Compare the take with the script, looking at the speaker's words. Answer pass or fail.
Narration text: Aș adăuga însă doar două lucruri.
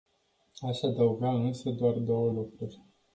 pass